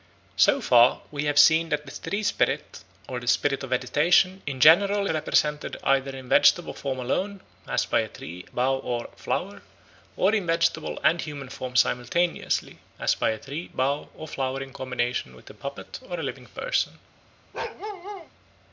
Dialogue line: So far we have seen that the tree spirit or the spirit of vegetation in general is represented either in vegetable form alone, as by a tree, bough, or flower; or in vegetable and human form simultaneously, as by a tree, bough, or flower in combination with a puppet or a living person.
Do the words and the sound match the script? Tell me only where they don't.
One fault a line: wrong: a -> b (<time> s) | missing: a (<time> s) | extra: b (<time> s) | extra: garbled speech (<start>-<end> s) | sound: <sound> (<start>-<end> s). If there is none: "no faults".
missing: is (5.0 s)
sound: bark (17.5-18.3 s)